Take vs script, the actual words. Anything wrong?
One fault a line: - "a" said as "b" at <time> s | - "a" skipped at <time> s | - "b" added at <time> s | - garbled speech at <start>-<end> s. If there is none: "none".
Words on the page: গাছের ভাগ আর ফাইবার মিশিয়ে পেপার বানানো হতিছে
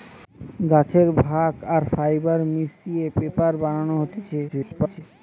- garbled speech at 4.5-5.0 s